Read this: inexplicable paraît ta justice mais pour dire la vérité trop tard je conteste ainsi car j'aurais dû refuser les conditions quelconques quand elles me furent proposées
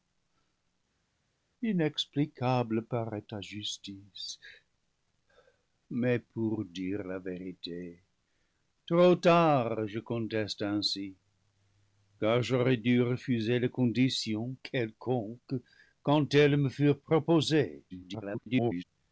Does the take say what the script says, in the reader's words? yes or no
no